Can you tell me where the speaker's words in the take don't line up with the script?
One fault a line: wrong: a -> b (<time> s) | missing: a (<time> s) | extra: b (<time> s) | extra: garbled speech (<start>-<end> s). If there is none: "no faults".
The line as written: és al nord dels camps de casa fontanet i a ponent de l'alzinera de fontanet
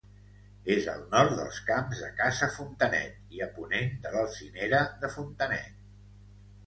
no faults